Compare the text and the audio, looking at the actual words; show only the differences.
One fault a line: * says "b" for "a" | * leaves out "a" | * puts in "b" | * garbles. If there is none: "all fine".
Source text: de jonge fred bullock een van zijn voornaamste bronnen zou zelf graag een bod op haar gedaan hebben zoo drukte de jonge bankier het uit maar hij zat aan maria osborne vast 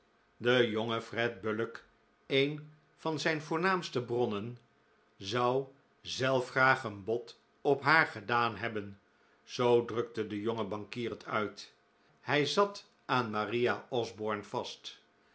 * leaves out "maar"